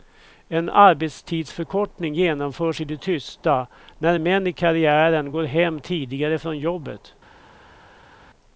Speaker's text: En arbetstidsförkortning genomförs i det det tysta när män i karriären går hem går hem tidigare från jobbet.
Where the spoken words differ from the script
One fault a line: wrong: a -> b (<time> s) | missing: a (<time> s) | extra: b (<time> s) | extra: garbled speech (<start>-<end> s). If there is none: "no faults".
missing: det (3.0 s)
missing: går hem (5.8 s)